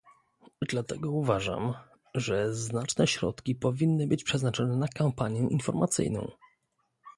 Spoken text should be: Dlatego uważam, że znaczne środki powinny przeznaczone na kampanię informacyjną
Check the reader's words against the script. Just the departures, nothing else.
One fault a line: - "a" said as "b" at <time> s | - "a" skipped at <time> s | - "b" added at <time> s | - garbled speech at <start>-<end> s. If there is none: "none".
- "być" added at 4.1 s